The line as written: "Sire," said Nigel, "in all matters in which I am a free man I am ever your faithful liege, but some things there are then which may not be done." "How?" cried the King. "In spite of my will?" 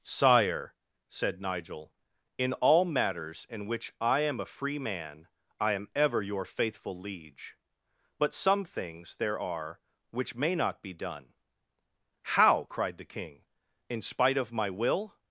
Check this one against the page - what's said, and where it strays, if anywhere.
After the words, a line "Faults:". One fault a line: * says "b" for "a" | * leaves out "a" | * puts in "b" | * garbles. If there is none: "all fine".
"Sire," said Nigel, "in all matters in which I am a free man I am ever your faithful liege, but some things there are which may not be done." "How?" cried the King. "In spite of my will?"
Faults:
* leaves out "then"